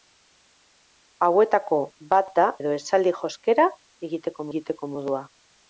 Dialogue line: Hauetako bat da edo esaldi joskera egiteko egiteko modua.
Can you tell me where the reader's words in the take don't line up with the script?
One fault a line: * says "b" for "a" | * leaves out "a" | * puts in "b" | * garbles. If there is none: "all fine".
all fine